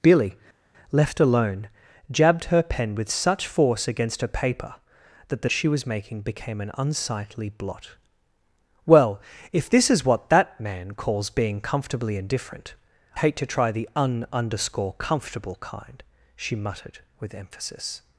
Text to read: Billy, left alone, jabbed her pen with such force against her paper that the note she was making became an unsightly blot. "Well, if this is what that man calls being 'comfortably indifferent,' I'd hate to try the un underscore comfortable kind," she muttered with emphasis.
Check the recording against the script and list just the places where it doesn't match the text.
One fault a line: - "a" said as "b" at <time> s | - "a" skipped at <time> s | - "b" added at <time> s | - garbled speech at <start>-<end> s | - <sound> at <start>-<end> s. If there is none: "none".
- "note" skipped at 5.5 s
- "I'd" skipped at 12.7 s